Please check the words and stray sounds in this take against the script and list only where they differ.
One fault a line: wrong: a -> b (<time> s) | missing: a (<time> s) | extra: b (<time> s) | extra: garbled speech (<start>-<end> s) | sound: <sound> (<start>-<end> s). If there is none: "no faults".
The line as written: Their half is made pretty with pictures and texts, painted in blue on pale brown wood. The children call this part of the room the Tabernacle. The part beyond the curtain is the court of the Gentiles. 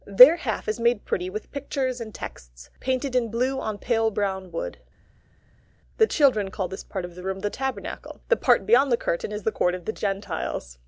no faults